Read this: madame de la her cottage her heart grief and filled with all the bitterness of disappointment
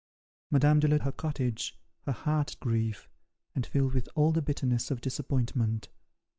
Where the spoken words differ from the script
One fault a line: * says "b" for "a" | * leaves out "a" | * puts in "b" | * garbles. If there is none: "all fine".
all fine